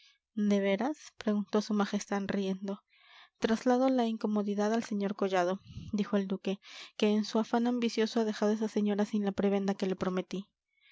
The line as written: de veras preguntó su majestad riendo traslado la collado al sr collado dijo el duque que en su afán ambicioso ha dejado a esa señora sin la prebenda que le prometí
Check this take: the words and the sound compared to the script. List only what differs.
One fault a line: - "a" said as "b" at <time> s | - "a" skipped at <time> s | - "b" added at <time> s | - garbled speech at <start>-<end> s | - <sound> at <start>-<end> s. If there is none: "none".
- "collado" said as "incomodidad" at 4.1 s